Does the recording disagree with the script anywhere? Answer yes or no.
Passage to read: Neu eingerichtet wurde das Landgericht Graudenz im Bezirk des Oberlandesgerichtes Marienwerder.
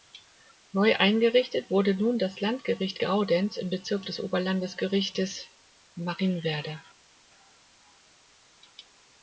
yes